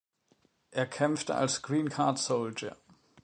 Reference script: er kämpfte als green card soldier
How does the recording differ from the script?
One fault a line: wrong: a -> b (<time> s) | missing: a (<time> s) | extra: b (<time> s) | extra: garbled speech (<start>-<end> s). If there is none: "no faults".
no faults